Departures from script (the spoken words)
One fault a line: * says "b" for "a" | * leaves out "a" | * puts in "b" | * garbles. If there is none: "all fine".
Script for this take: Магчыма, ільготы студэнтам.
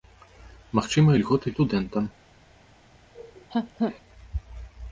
all fine